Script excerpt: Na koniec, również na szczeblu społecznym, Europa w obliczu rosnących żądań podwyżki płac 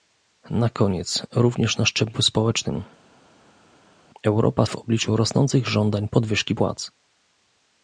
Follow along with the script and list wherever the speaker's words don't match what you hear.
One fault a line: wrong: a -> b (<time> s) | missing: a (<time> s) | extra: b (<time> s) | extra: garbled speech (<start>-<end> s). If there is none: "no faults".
no faults